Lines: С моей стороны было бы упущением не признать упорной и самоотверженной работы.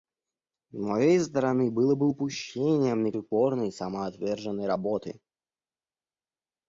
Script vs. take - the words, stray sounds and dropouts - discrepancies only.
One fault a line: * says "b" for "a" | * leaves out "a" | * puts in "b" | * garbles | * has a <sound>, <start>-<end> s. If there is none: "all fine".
* leaves out "признать"